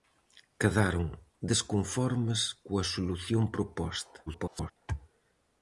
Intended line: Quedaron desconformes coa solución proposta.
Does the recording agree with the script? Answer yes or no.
no